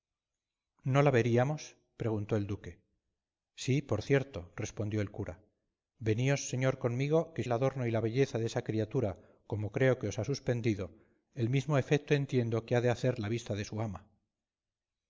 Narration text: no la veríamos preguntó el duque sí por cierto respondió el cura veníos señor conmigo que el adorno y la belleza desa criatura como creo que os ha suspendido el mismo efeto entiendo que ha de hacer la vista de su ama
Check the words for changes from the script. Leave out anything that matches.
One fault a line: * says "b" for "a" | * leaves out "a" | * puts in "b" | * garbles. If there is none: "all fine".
all fine